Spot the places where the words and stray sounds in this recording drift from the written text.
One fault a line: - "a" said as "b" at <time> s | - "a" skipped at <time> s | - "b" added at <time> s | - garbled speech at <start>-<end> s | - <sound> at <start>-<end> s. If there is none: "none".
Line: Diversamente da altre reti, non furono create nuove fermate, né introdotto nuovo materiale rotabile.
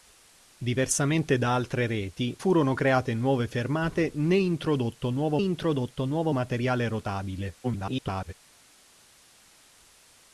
- "non" skipped at 2.4 s
- "introdotto nuovo" added at 5.4 s
- garbled speech at 7.6-8.3 s